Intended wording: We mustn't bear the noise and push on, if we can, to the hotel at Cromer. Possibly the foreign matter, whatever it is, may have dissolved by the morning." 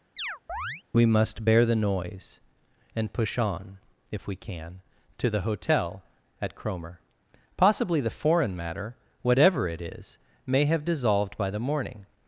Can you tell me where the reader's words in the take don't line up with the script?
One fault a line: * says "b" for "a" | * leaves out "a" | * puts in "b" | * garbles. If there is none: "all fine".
* says "must" for "mustn't"